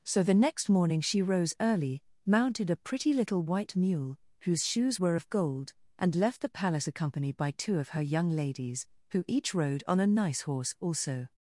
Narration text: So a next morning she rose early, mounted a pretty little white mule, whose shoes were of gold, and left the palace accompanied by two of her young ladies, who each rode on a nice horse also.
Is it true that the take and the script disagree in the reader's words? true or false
true